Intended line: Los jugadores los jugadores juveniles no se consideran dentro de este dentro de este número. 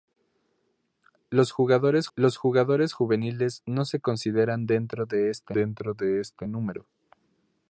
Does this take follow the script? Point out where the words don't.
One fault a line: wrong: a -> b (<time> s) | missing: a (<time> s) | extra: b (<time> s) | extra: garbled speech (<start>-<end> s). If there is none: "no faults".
no faults